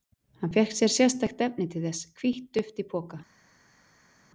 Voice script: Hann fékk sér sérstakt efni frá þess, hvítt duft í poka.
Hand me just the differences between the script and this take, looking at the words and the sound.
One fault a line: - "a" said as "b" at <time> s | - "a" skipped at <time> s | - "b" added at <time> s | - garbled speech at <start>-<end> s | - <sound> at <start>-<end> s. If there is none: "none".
- "frá" said as "til" at 1.7 s